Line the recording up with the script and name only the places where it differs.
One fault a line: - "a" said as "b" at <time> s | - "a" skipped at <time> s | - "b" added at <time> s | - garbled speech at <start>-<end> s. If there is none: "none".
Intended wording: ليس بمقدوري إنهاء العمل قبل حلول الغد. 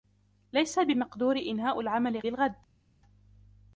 - "قبل حلول" skipped at 2.2 s